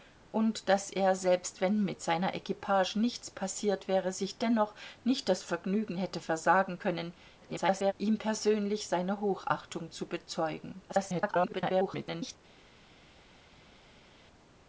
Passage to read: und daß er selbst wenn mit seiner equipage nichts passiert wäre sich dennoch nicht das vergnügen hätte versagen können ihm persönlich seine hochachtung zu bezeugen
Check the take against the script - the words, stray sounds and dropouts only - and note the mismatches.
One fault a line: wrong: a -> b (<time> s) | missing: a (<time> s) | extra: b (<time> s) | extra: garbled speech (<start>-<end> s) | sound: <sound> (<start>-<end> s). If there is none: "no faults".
extra: garbled speech (7.4-7.9 s)
extra: garbled speech (10.9-12.4 s)